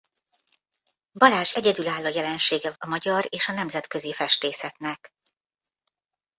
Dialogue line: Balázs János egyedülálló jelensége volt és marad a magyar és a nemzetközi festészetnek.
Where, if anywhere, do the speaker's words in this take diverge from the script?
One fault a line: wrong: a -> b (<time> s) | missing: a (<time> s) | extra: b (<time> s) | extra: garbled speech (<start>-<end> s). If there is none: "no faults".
missing: János (1.6 s)
missing: volt és marad (2.7 s)